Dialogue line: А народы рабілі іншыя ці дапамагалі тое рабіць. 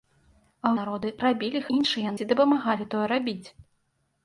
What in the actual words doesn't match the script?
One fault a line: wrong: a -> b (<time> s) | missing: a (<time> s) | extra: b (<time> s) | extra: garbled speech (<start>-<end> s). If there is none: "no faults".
no faults